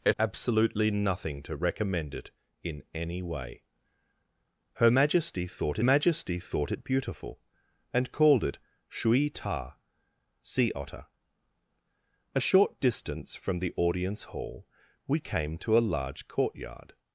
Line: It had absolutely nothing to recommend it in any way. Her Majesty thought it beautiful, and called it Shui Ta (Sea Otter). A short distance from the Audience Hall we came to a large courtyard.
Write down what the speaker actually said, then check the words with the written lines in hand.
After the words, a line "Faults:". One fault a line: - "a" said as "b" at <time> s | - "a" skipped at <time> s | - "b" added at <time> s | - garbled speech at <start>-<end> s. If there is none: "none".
It absolutely nothing to recommend it in any way. Her Majesty thought Majesty thought it beautiful, and called it Shui Ta (Sea Otter). A short distance from the Audience Hall we came to a large courtyard.
Faults:
- "had" skipped at 0.1 s
- "Majesty thought" added at 5.8 s